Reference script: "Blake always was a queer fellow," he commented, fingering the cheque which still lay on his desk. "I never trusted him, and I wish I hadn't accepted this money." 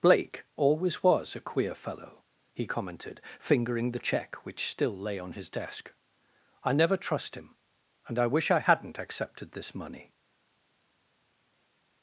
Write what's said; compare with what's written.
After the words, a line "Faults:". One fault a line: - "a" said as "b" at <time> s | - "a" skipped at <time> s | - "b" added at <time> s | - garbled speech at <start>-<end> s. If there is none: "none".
"Blake always was a queer fellow," he commented, fingering the cheque which still lay on his desk. "I never trust him, and I wish I hadn't accepted this money."
Faults:
- "trusted" said as "trust" at 7.0 s